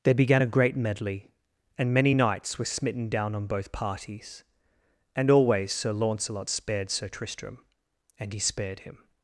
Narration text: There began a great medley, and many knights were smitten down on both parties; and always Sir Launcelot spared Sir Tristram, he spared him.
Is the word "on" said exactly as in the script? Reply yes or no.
yes